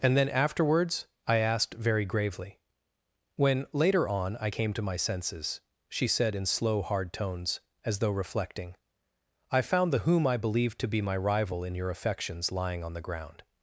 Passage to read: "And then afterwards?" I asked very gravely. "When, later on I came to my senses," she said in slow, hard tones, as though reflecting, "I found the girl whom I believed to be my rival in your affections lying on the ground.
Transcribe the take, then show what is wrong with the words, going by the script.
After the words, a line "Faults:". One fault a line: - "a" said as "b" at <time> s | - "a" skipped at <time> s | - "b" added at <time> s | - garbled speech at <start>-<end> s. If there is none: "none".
"And then afterwards?" I asked very gravely. "When, later on I came to my senses," she said in slow, hard tones, as though reflecting, "I found the whom I believed to be my rival in your affections lying on the ground.
Faults:
- "girl" skipped at 10.0 s